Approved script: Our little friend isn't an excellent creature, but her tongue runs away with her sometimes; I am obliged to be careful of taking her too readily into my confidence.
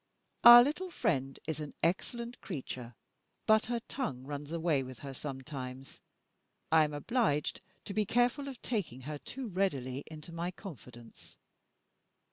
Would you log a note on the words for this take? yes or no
yes